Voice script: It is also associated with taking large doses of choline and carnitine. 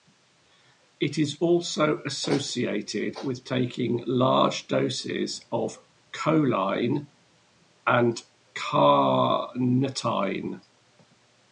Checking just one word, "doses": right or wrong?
right